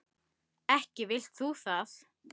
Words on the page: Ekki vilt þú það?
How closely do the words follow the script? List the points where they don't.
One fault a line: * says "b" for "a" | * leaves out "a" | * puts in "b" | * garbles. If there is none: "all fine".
all fine